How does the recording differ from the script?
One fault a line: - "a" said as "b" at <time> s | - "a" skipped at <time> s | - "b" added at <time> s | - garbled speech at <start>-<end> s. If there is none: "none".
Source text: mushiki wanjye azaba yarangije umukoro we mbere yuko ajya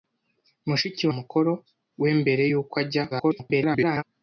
- "wanjye azaba yarangije" skipped at 1.1 s
- garbled speech at 3.1-4.0 s